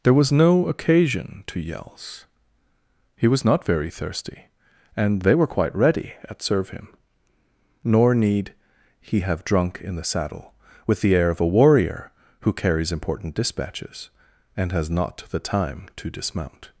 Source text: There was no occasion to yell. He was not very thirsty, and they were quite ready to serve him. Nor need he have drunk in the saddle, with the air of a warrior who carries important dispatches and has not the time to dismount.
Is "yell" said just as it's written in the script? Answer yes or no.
no